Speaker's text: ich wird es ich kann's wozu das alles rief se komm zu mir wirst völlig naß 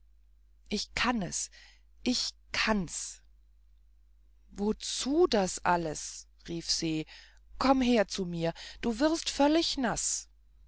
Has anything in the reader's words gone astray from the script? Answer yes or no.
yes